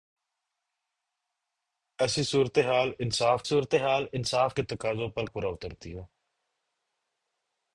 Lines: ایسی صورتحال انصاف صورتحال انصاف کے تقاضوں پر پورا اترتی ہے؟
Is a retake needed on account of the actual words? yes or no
no